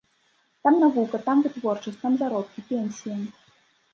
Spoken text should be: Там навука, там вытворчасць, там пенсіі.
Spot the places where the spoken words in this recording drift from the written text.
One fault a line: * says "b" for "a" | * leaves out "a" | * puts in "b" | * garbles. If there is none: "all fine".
* puts in "заробкі"